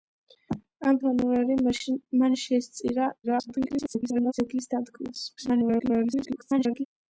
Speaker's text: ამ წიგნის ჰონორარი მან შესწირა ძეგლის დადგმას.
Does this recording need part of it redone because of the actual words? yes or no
yes